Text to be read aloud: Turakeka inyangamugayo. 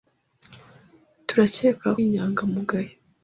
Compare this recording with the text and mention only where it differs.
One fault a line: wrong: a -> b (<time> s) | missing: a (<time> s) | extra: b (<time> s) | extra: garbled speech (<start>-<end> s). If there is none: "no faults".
no faults